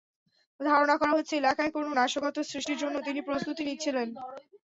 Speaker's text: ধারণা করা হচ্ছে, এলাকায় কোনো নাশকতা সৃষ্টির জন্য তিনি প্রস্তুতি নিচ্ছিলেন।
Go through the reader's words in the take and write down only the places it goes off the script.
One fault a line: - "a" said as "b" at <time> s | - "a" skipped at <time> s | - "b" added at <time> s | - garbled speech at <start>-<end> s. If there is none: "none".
none